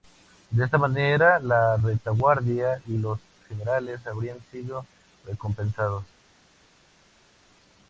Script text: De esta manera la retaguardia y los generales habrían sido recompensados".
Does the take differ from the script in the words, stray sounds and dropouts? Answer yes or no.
no